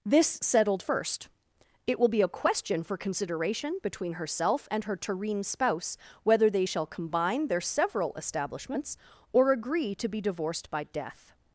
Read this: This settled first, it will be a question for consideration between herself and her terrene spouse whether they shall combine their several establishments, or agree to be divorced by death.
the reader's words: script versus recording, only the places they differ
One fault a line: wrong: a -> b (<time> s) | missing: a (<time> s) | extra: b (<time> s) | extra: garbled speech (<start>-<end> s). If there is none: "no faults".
no faults